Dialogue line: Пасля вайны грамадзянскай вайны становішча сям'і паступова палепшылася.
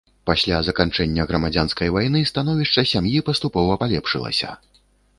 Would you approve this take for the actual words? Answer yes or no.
no